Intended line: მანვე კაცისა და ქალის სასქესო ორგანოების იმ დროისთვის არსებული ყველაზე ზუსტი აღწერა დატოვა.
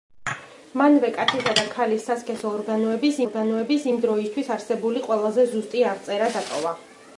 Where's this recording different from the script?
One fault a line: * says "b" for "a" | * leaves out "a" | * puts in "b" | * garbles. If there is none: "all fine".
* puts in "ორგანოების"